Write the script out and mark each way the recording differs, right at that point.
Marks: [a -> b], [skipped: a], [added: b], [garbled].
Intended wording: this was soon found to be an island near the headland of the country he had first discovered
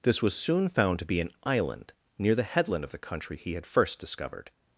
this was soon found to be an island near the headland of the country he had first discovered